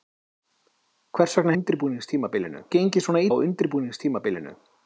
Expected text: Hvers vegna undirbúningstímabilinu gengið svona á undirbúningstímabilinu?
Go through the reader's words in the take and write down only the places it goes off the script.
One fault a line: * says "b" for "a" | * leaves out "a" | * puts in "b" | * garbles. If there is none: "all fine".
all fine